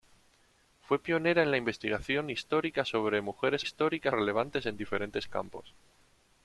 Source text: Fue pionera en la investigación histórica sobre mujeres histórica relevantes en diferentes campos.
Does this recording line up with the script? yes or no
yes